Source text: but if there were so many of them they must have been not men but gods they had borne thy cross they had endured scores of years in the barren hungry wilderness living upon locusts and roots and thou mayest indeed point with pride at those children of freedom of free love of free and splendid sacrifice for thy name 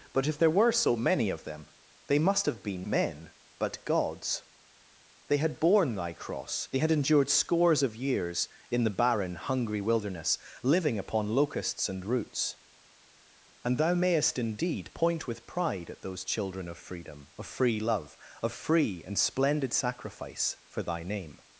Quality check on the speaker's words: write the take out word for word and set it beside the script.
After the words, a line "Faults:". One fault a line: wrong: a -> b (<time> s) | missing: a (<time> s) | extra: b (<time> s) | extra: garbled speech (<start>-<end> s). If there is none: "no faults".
but if there were so many of them they must have been men but gods they had borne thy cross they had endured scores of years in the barren hungry wilderness living upon locusts and roots and thou mayest indeed point with pride at those children of freedom of free love of free and splendid sacrifice for thy name
Faults:
missing: not (2.9 s)